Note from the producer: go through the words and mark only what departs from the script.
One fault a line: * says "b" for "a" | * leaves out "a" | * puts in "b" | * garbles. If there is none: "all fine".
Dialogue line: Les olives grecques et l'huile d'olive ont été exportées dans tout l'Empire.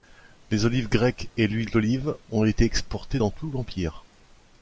all fine